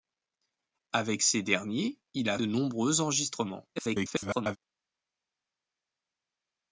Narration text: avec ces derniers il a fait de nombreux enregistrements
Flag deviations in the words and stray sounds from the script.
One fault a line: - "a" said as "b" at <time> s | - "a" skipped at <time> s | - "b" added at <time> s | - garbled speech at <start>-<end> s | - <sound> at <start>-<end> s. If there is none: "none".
- "fait" skipped at 2.4 s
- garbled speech at 3.8-4.6 s